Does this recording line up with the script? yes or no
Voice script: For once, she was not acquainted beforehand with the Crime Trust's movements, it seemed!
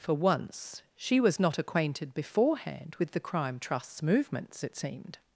yes